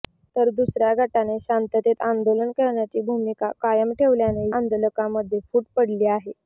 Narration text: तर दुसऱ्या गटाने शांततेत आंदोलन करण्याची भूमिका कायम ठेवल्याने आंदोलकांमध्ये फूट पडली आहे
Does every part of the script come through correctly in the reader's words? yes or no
yes